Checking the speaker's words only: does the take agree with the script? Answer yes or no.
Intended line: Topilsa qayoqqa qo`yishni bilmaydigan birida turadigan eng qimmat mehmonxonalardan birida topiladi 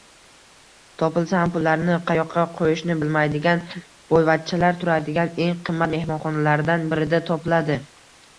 no